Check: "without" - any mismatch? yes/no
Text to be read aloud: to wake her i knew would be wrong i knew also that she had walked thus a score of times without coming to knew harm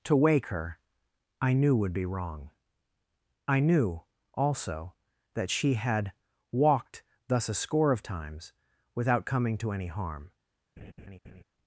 no